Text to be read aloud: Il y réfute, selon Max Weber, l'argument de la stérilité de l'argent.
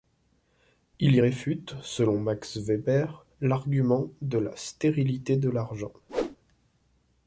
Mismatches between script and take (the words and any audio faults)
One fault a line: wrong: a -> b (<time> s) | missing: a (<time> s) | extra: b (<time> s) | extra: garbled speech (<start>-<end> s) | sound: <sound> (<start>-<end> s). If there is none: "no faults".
sound: whoosh (6.1-6.4 s)